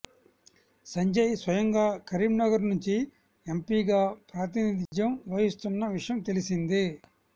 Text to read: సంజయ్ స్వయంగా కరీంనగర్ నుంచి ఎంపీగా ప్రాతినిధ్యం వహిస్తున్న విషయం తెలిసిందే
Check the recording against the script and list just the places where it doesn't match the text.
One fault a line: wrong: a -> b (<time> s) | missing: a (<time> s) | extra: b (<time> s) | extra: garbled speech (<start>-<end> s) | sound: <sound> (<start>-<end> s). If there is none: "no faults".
sound: dropout (4.9-4.9 s)